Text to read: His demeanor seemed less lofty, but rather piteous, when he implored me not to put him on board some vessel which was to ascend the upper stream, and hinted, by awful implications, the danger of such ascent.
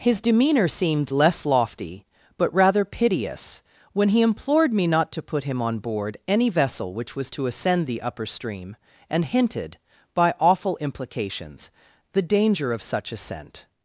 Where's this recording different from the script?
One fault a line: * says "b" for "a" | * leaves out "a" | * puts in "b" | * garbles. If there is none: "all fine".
* says "any" for "some"